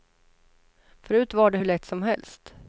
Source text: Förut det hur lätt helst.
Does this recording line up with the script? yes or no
no